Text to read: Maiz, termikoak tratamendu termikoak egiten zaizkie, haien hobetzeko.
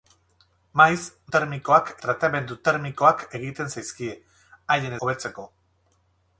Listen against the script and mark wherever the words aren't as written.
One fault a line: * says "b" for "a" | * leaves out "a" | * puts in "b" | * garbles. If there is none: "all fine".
all fine